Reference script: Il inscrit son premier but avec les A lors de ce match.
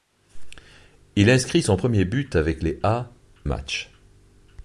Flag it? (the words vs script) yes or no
yes